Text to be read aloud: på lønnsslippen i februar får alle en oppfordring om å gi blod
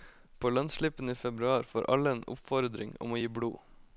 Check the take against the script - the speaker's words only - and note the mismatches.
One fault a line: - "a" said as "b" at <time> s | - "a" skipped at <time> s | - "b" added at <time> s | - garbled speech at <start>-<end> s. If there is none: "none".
none